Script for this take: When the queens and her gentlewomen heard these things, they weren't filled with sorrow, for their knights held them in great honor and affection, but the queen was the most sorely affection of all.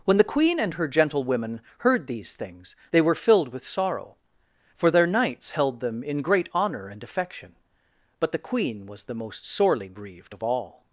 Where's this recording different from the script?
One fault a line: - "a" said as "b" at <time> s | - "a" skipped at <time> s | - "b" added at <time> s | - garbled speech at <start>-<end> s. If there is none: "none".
- "queens" said as "queen" at 0.3 s
- "weren't" said as "were" at 3.0 s
- "affection" said as "grieved" at 9.9 s